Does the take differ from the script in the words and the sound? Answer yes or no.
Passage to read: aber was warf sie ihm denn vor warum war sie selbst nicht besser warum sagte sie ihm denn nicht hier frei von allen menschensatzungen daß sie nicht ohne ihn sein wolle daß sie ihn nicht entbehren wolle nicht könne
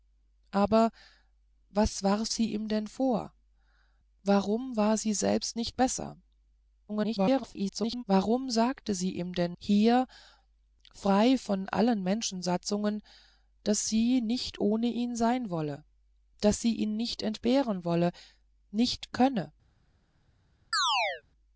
yes